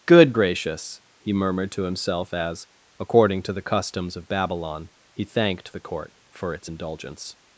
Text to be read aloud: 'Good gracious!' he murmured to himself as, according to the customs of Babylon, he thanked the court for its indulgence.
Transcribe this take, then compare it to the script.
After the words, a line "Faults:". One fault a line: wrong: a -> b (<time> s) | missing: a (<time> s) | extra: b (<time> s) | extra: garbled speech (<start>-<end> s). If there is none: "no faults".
'Good gracious!' he murmured to himself as, according to the customs of Babylon, he thanked the court for its indulgence.
Faults:
no faults